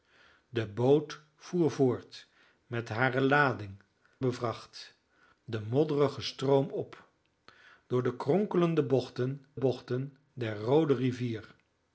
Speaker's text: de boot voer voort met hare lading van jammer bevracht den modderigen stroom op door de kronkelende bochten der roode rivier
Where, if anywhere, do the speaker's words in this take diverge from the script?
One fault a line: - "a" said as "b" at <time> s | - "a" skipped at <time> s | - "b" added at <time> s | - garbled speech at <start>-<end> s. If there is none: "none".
- "van jammer" skipped at 3.8 s
- "bochten" added at 9.6 s